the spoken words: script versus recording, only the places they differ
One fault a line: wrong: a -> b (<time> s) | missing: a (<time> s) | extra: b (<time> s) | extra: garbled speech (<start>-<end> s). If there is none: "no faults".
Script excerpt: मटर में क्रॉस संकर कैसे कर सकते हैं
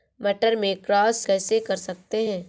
missing: संकर (1.2 s)